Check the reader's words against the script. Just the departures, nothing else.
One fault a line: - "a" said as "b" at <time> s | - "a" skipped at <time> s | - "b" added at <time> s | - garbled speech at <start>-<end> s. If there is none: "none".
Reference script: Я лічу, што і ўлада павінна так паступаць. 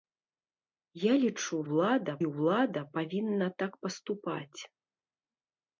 - "што" said as "ўлада" at 1.7 s